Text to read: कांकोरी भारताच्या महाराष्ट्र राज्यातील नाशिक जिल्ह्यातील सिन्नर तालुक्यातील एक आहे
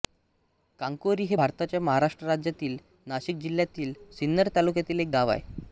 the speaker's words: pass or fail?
fail